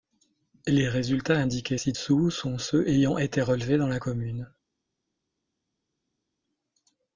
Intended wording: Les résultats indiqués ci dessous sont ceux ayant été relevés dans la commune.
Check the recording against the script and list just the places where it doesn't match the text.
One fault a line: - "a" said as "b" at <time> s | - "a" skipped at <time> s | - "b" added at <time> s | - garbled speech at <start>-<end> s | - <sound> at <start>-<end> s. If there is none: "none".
none